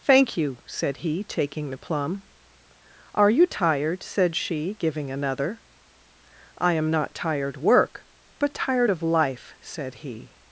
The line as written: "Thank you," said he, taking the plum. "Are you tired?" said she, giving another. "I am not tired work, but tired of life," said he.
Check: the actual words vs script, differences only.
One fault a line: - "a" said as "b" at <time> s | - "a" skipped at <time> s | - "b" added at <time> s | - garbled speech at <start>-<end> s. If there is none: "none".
none